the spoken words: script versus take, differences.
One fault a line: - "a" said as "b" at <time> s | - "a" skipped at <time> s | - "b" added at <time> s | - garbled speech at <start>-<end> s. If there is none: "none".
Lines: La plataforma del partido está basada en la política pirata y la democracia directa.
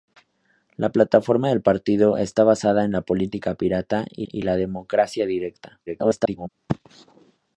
- "y" added at 4.2 s
- garbled speech at 5.9-6.5 s